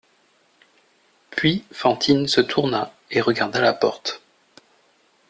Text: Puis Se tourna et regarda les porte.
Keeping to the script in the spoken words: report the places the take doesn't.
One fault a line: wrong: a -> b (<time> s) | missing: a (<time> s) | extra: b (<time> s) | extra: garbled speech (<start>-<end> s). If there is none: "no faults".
extra: Fantine (1.7 s)
wrong: les -> la (3.6 s)